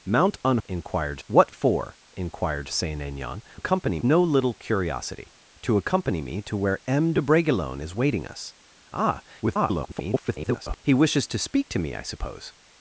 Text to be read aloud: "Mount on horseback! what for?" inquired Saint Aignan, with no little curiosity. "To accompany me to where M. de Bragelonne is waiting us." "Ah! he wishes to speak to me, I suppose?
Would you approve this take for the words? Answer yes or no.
no